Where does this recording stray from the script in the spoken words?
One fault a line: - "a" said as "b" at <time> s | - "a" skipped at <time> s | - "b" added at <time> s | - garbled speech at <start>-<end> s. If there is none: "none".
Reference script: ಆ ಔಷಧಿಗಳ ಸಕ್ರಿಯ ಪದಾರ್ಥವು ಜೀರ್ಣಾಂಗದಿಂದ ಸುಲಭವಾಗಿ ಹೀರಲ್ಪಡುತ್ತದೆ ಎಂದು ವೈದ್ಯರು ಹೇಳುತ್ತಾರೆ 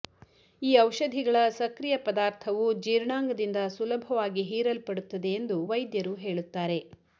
- "ಆ" said as "ಈ" at 0.6 s